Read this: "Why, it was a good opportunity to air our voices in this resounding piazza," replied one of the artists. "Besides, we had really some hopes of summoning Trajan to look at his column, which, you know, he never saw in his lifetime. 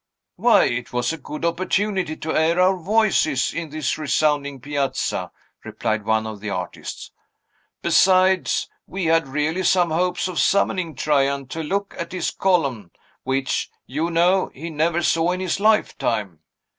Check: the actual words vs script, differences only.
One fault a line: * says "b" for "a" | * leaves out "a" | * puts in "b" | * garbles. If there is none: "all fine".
all fine